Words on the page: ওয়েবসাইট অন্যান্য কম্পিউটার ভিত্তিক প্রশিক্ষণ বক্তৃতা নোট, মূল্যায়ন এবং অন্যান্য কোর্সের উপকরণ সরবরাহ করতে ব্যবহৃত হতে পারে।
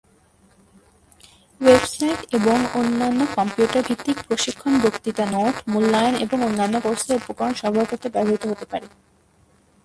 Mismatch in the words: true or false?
true